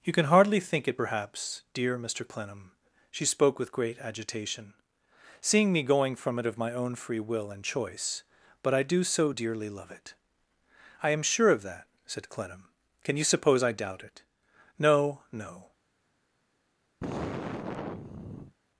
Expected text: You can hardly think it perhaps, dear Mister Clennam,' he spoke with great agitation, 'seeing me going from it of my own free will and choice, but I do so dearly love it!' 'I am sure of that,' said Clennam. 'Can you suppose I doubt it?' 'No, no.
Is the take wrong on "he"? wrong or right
wrong